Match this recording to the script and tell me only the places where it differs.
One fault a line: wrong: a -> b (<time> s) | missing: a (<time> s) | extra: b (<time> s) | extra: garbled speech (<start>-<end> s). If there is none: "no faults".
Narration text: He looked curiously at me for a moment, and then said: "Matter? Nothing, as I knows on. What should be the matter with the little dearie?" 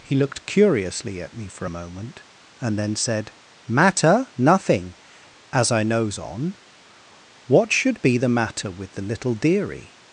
no faults